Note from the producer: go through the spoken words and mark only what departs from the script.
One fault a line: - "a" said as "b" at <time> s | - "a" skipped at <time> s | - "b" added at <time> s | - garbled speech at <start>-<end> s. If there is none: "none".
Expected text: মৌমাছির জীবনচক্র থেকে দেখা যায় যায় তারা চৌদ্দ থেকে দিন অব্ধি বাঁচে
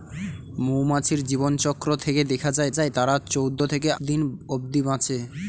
none